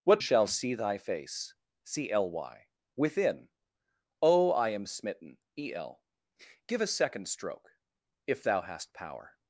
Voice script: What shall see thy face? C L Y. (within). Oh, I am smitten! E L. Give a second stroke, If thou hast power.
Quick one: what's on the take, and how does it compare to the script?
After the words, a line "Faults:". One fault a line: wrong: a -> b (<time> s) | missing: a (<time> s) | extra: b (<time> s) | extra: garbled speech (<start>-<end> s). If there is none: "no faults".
What shall see thy face? C L Y. (within). Oh, I am smitten! E L. Give a second stroke, If thou hast power.
Faults:
no faults